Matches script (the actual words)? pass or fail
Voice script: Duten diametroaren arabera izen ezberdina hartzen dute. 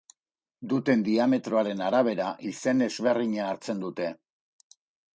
pass